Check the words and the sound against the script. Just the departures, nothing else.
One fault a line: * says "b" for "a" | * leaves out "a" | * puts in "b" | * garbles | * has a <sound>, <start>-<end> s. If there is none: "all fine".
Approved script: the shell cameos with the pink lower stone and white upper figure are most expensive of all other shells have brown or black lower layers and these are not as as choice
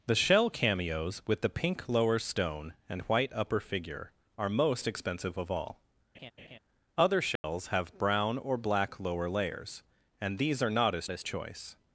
* has a laugh, 6.1-6.6 s
* has a dropout, 7.4-7.4 s